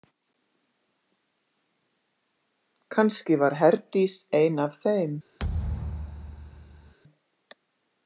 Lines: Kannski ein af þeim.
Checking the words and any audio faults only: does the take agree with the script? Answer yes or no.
no